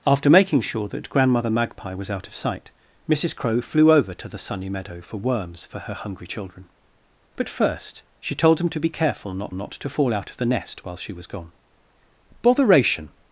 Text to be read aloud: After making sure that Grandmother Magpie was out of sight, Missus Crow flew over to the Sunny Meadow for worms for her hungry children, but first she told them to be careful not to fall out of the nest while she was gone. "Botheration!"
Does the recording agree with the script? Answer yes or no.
no